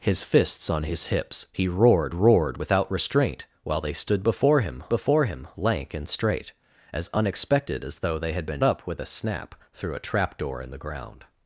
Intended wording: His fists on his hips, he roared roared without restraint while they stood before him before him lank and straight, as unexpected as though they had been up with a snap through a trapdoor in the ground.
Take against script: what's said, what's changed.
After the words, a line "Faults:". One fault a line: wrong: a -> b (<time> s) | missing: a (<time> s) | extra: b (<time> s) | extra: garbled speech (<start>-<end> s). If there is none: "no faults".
His fists on his hips, he roared roared without restraint while they stood before him before him lank and straight, as unexpected as though they had been up with a snap through a trapdoor in the ground.
Faults:
no faults